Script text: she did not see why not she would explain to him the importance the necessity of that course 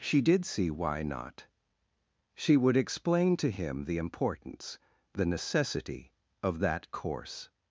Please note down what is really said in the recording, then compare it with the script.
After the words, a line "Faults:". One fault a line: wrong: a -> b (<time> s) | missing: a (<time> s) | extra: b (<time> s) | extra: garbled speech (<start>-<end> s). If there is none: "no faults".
she did see why not she would explain to him the importance the necessity of that course
Faults:
missing: not (0.5 s)